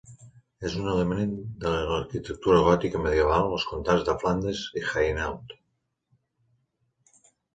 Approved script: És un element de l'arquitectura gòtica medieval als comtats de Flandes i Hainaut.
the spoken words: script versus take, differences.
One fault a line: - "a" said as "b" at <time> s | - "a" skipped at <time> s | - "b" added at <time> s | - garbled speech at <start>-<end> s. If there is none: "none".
none